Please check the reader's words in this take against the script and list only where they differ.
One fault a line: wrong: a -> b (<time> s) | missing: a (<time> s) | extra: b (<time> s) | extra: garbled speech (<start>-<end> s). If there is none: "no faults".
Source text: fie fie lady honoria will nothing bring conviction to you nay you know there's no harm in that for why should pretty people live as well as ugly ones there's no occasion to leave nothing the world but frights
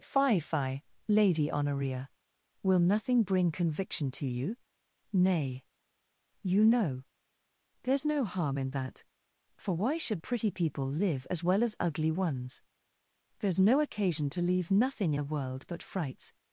no faults